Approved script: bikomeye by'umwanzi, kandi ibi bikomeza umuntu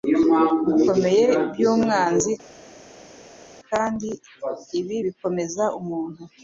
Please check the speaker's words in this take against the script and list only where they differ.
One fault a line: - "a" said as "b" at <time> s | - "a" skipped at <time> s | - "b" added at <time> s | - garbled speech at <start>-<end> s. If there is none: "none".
none